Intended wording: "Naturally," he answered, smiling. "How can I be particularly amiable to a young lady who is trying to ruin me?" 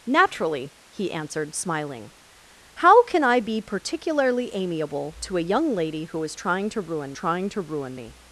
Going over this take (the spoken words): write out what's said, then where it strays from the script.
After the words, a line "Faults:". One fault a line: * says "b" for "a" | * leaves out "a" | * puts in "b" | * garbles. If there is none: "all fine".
"Naturally," he answered, smiling. "How can I be particularly amiable to a young lady who is trying to ruin trying to ruin me?"
Faults:
* puts in "trying to ruin"